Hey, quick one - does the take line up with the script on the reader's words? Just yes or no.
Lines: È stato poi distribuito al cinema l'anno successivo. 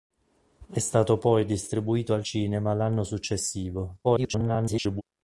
no